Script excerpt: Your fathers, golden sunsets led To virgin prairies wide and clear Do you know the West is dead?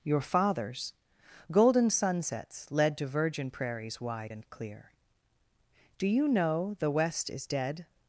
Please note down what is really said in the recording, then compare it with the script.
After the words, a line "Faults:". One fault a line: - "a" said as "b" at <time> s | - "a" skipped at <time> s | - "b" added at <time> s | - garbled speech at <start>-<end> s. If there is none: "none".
Your fathers, golden sunsets led To virgin prairies wide and clear Do you know the West is dead?
Faults:
none